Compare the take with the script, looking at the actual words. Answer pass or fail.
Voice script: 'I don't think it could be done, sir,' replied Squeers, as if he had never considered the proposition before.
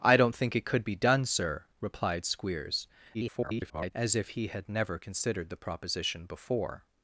fail